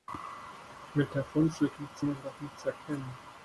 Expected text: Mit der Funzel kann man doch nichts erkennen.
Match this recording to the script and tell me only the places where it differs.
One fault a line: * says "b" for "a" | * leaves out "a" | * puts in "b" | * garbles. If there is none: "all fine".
* says "nichts" for "kann"